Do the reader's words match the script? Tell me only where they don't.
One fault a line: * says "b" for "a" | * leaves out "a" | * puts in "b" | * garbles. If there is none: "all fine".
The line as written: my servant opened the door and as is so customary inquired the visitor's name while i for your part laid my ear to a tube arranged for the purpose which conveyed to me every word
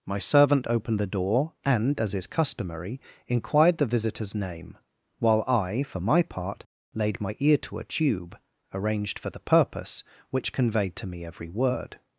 * leaves out "so"
* says "my" for "your"